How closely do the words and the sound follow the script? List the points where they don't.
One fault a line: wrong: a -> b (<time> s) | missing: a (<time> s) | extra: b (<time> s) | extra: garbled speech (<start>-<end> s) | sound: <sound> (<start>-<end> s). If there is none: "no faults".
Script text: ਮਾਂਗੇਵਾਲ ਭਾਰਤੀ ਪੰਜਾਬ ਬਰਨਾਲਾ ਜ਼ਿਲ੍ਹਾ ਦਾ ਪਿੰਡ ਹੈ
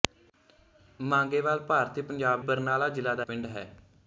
no faults